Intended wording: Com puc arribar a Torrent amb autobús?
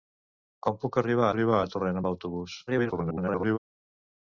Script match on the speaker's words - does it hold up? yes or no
no